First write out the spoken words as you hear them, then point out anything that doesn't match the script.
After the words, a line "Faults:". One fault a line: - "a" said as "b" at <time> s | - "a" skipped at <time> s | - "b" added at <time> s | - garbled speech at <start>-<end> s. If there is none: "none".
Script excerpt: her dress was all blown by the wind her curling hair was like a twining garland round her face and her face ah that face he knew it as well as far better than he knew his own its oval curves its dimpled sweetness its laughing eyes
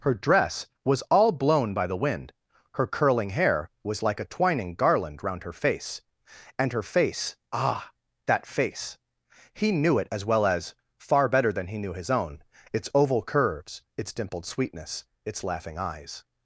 her dress was all blown by the wind her curling hair was like a twining garland round her face and her face ah that face he knew it as well as far better than he knew his own its oval curves its dimpled sweetness its laughing eyes
Faults:
none